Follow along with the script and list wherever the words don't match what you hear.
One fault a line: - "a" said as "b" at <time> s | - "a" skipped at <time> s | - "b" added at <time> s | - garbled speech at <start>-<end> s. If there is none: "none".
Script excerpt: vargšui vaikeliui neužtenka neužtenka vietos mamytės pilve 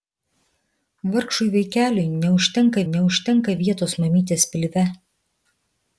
none